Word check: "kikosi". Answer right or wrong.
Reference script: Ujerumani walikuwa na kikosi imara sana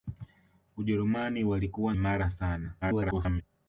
wrong